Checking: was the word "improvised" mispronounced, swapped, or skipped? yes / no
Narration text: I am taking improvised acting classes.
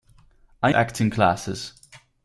yes